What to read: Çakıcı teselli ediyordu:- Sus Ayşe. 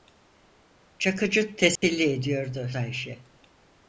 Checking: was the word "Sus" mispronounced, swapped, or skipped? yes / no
yes